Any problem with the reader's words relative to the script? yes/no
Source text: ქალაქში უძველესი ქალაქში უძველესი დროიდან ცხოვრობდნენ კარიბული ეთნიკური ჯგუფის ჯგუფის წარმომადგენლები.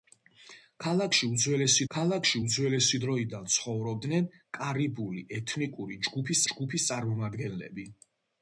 no